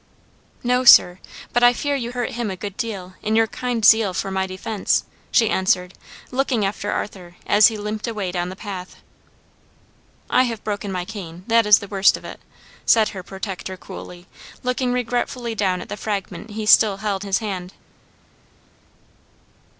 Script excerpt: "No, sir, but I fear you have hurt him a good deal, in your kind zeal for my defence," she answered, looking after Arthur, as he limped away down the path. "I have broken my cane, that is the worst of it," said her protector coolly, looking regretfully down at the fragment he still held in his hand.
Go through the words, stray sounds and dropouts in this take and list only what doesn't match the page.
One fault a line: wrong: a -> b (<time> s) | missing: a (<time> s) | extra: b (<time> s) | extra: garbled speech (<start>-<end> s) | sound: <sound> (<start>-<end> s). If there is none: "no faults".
missing: have (2.1 s)
missing: in (17.2 s)